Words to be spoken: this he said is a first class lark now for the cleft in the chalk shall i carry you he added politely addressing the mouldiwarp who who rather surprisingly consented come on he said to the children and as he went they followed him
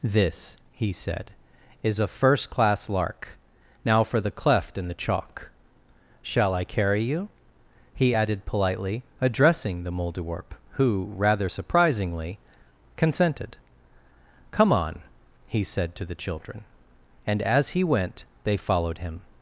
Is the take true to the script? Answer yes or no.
no